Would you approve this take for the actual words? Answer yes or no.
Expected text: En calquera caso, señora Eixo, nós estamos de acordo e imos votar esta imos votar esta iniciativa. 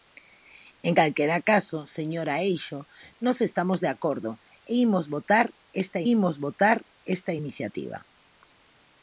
yes